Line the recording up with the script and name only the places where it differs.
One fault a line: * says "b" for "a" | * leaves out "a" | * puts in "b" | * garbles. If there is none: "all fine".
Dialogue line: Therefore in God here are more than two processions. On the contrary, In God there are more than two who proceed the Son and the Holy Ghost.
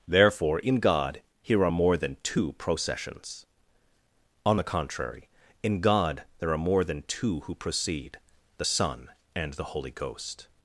all fine